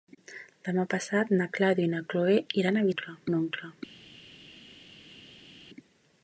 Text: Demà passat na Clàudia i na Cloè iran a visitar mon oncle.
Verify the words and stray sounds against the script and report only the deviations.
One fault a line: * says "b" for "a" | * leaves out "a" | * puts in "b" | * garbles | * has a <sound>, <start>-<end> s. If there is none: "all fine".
* says "oncle" for "visitar"